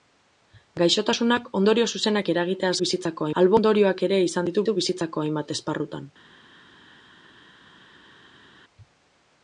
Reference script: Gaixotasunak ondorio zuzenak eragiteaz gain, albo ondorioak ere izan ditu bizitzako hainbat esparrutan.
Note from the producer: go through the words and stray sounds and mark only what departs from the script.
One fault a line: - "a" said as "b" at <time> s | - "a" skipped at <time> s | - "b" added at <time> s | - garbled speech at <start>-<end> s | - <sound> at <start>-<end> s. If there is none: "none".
- "gain" said as "bizitzako" at 2.8 s
- "ditu" added at 4.6 s